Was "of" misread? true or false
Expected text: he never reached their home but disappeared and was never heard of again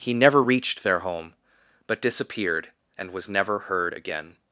true